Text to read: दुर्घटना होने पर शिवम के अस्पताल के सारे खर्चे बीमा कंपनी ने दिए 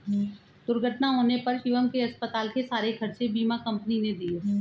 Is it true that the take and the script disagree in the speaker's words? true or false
false